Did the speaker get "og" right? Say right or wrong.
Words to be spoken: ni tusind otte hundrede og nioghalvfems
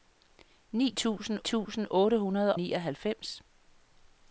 wrong